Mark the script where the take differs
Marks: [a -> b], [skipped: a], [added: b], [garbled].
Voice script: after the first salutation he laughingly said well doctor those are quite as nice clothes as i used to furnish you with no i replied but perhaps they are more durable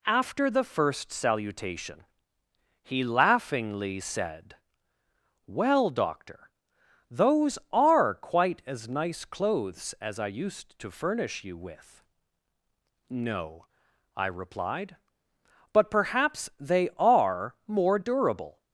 after the first salutation he laughingly said well doctor those are quite as nice clothes as i used to furnish you with no i replied but perhaps they are more durable